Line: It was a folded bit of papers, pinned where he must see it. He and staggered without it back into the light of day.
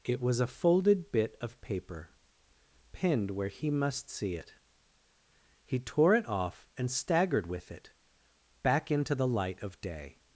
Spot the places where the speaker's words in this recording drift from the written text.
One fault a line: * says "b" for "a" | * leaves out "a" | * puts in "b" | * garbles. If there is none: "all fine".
* says "paper" for "papers"
* puts in "tore it off"
* says "with" for "without"